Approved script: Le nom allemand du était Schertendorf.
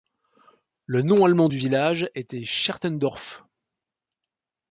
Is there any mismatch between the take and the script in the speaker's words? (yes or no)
yes